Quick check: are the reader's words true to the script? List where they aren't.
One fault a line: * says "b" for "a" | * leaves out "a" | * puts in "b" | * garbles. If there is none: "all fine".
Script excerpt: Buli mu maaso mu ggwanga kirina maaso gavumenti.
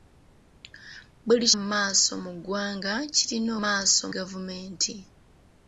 all fine